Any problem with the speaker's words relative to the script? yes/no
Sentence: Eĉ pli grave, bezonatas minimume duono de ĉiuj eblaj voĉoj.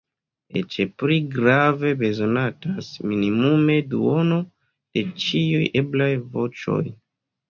no